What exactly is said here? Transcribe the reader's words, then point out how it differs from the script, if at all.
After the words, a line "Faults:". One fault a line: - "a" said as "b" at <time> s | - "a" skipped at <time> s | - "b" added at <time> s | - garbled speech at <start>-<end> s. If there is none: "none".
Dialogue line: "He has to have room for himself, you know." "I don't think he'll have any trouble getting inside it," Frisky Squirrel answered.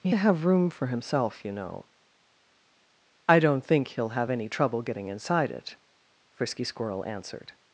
"He to have room for himself, you know." "I don't think he'll have any trouble getting inside it," Frisky Squirrel answered.
Faults:
- "has" skipped at 0.1 s